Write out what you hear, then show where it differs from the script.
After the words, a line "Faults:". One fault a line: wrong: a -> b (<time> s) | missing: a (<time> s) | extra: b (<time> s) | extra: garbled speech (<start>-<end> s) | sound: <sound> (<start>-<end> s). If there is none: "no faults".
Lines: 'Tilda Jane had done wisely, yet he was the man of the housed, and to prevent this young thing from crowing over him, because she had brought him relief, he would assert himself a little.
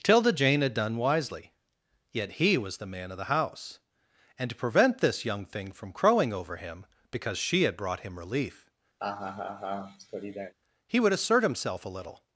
'Tilda Jane had done wisely, yet he was the man of the house, and to prevent this young thing from crowing over him, because she had brought him relief, he would assert himself a little.
Faults:
wrong: housed -> house (3.3 s)
sound: laugh (9.0-10.5 s)